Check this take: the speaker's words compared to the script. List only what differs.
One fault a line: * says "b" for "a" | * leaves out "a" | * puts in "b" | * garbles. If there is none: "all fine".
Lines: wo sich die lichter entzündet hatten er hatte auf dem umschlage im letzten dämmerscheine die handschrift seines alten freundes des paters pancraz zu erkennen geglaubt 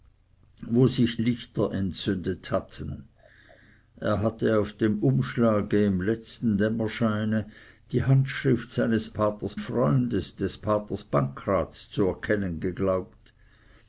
* leaves out "die"
* says "paters" for "alten"